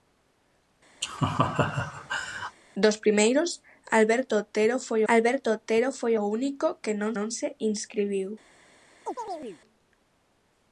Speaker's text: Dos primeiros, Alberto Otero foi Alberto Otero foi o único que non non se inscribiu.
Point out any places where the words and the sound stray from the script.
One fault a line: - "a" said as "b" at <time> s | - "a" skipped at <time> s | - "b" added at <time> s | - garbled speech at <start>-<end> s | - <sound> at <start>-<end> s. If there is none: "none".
- laugh at 1.0-2.6 s
- chirp at 9.0-9.6 s